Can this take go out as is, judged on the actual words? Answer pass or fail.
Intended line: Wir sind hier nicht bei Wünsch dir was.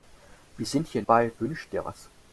fail